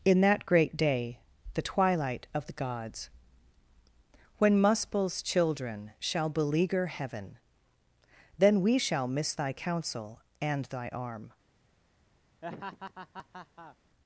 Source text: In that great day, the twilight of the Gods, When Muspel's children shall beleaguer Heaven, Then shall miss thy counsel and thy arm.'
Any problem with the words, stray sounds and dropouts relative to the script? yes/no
yes